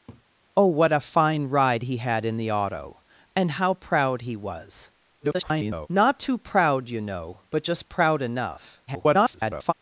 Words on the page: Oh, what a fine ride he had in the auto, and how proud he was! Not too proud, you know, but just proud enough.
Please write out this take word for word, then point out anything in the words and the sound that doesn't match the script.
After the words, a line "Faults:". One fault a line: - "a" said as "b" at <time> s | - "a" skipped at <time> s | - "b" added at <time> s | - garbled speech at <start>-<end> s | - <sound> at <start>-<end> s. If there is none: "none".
Oh, what a fine ride he had in the auto, and how proud he was! [garbled] Not too proud, you know, but just proud enough. [garbled]
Faults:
- laugh at 0.1-0.2 s
- garbled speech at 5.2-5.9 s
- garbled speech at 8.9-9.7 s